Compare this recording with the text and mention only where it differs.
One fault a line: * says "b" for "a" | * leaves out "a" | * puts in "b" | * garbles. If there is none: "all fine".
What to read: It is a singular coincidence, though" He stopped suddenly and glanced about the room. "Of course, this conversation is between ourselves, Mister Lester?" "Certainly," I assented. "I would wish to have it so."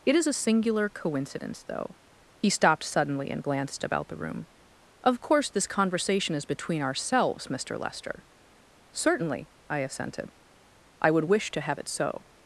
all fine